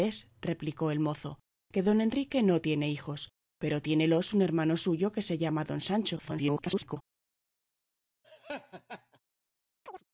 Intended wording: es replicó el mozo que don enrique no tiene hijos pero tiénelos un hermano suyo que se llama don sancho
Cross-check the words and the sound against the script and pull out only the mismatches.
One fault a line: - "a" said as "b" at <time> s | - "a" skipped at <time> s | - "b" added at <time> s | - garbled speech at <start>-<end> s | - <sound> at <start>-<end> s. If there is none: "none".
- garbled speech at 6.2-7.0 s
- laugh at 8.2-9.2 s
- chirp at 9.9-10.0 s